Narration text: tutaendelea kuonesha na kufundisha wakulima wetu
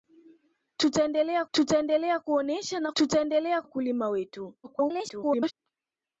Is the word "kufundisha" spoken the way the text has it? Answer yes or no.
no